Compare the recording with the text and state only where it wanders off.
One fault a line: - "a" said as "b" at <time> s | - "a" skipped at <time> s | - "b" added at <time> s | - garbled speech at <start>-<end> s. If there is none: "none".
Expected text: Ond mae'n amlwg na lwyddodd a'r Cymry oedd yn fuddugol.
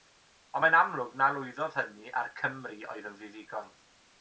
- "hynny" added at 1.8 s